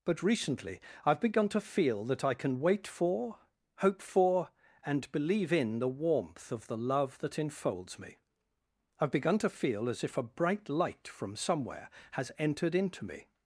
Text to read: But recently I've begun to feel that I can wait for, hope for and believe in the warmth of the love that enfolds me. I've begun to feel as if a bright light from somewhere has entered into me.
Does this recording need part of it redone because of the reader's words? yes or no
no